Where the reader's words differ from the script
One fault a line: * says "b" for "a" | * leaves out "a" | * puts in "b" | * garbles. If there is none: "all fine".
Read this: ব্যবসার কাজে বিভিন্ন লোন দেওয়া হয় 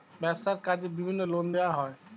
all fine